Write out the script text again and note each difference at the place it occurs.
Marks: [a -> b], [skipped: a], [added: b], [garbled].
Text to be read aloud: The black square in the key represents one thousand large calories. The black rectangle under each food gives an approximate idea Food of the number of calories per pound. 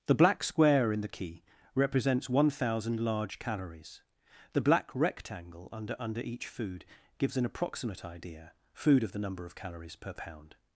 The black square in the key represents one thousand large calories. The black rectangle under [added: under] each food gives an approximate idea Food of the number of calories per pound.